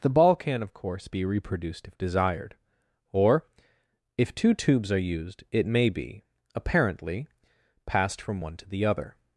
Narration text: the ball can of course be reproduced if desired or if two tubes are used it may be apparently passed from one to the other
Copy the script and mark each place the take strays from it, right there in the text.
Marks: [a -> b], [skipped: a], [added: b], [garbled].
the ball can of course be reproduced if desired or if two tubes are used it may be apparently passed from one to the other